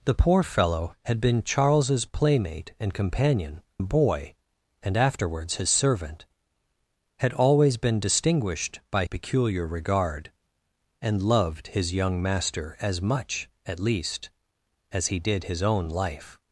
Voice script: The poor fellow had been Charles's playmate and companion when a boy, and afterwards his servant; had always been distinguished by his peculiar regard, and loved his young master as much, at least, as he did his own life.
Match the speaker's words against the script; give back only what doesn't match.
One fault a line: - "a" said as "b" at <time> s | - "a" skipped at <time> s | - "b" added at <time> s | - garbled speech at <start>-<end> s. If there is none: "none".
- "when" skipped at 3.6 s
- "his" skipped at 9.0 s